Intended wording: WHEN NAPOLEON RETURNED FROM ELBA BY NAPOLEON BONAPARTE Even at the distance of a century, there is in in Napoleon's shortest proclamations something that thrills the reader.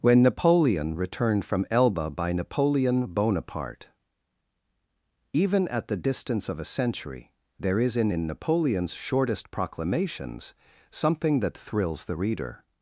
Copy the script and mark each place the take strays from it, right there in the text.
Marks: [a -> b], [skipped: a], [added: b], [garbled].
WHEN NAPOLEON RETURNED FROM ELBA BY NAPOLEON BONAPARTE Even at the distance of a century, there is in in Napoleon's shortest proclamations something that thrills the reader.